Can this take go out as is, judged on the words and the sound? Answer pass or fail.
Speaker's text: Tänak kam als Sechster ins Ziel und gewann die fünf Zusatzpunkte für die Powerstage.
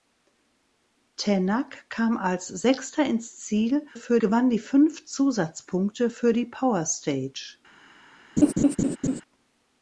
fail